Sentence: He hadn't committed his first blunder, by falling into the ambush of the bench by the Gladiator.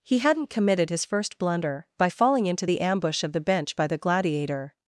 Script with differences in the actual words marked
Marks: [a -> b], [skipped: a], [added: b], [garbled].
He hadn't committed his first blunder, by falling into the ambush of the bench by the Gladiator.